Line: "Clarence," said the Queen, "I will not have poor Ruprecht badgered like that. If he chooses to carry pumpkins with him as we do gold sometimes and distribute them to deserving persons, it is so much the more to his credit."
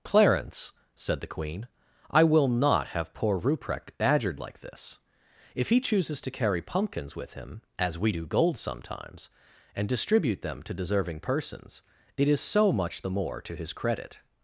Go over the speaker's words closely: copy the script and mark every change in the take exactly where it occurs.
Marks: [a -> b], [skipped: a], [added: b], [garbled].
"Clarence," said the Queen, "I will not have poor Ruprecht badgered like [that. -> this] If he chooses to carry pumpkins with him as we do gold sometimes and distribute them to deserving persons, it is so much the more to his credit."